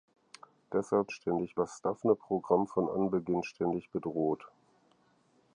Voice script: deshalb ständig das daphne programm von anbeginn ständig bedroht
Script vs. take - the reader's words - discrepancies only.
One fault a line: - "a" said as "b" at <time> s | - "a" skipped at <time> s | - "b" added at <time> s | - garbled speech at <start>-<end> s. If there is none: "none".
none